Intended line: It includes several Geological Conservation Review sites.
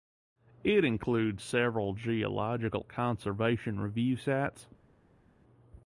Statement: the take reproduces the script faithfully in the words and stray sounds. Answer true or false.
true